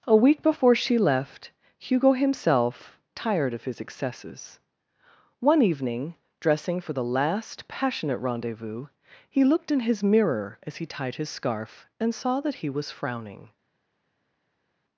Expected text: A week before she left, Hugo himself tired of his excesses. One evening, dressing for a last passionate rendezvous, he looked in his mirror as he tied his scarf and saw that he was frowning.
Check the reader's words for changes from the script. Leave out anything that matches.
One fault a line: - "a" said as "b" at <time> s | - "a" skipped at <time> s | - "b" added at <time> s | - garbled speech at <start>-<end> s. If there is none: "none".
- "a" said as "the" at 6.9 s